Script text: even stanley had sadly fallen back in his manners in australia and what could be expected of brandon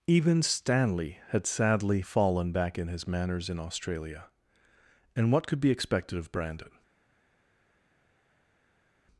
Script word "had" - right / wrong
right